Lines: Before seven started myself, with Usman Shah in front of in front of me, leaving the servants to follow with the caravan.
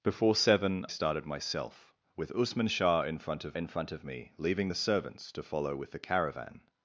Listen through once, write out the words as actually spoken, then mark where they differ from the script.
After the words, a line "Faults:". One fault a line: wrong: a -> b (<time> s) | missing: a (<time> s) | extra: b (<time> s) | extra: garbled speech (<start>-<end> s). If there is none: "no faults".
Before seven started myself, with Usman Shah in front of in front of me, leaving the servants to follow with the caravan.
Faults:
no faults